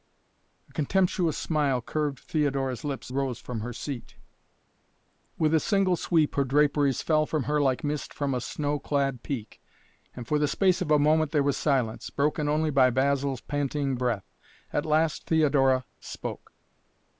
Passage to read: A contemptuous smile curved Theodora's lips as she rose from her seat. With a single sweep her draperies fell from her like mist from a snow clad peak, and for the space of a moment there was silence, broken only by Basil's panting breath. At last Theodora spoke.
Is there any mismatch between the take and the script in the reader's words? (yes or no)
yes